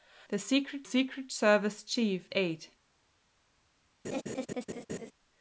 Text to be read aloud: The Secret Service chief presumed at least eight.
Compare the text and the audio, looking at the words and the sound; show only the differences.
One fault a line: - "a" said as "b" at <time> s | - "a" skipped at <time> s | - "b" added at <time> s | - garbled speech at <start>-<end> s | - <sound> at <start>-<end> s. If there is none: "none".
- "Secret" added at 0.8 s
- "presumed at least" skipped at 2.3 s
- laugh at 4.0-5.1 s